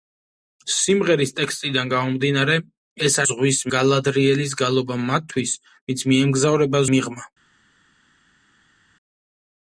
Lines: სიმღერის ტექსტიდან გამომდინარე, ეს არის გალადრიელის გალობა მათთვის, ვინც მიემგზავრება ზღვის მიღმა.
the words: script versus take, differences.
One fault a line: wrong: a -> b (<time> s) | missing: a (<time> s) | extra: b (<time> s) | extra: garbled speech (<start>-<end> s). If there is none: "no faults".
wrong: არის -> ზღვის (3.3 s)
missing: ზღვის (6.9 s)